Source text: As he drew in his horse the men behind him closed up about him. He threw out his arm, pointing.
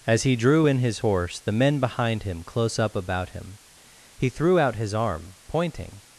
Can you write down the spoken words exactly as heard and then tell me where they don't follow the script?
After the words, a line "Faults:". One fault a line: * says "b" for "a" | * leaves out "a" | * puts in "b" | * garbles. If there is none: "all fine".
As he drew in his horse the men behind him close up about him. He threw out his arm, pointing.
Faults:
* says "close" for "closed"